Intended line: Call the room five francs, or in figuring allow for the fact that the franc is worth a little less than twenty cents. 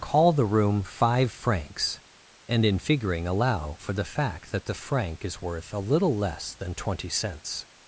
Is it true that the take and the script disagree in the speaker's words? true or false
true